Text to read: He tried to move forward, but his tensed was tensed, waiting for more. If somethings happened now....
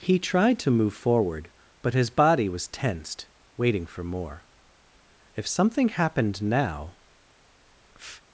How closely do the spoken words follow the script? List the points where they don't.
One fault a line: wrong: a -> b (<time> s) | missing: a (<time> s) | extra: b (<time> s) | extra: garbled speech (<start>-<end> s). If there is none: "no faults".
wrong: tensed -> body (2.1 s)
wrong: somethings -> something (5.5 s)